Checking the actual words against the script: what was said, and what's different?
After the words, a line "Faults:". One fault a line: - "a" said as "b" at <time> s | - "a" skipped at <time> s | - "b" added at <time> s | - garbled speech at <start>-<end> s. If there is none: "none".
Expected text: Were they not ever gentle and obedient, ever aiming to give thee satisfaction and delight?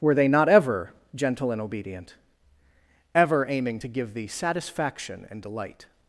Were they not ever gentle and obedient, ever aiming to give thee satisfaction and delight?
Faults:
none